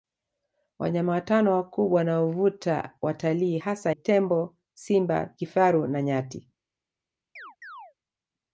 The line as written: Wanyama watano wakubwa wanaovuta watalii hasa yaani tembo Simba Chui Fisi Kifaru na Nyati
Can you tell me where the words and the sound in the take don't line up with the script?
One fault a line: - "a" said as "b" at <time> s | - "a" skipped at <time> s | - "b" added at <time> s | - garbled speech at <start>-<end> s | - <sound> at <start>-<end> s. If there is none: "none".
- "yaani" skipped at 3.9 s
- "Chui Fisi" skipped at 5.3 s
- chirp at 7.4-7.9 s